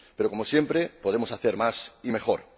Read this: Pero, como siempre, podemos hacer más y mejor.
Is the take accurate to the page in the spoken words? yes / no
yes